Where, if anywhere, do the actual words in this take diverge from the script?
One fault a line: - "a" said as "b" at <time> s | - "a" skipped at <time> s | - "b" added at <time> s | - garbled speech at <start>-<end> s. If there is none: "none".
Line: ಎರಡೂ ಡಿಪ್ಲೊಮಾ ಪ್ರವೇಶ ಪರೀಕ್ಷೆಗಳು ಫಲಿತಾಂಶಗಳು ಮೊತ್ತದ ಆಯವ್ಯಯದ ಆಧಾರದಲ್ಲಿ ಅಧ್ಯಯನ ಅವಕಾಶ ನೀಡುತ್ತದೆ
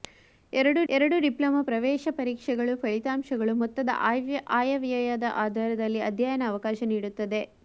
- "ಎರಡೂ" added at 0.9 s